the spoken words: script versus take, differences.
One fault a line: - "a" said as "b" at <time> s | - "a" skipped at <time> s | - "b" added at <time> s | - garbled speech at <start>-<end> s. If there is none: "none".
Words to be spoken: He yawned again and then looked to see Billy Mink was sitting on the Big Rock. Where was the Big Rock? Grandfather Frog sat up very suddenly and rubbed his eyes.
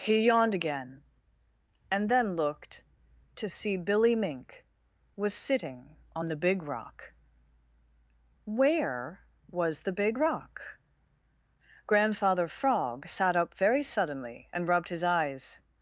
none